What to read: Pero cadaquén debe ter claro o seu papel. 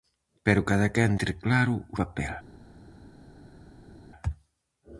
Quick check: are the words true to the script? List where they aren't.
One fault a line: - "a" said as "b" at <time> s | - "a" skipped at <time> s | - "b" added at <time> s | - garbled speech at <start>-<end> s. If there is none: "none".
- "debe" skipped at 1.1 s
- "seu" skipped at 2.0 s